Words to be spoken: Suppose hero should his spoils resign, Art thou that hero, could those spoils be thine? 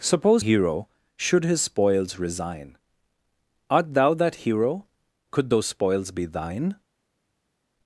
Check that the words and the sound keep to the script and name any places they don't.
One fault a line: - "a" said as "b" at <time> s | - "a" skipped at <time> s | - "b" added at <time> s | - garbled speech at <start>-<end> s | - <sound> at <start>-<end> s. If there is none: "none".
none